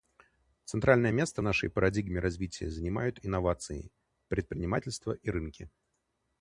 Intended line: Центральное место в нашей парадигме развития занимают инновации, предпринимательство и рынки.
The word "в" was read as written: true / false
true